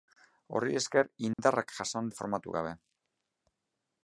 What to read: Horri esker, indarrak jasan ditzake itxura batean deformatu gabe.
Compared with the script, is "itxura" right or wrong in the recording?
wrong